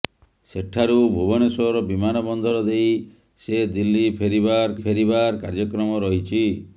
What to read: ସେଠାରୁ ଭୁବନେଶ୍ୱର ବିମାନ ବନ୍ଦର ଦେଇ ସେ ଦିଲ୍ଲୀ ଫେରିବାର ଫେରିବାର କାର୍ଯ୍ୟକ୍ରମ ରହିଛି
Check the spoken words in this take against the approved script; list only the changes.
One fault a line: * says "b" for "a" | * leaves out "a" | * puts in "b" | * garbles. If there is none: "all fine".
all fine